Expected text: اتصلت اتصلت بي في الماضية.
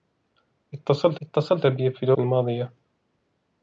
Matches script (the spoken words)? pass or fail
pass